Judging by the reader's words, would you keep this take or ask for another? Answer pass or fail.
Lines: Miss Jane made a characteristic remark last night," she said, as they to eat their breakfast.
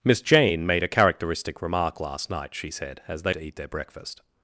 pass